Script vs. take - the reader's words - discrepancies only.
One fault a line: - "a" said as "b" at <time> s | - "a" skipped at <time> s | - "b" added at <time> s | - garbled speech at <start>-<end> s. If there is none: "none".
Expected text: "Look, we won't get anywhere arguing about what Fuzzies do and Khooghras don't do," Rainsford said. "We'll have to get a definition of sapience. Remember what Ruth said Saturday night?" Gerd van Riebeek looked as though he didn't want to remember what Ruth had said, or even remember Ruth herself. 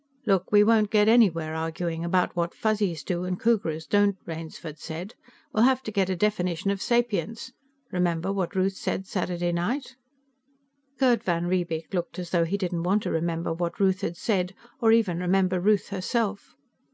- "do" skipped at 4.2 s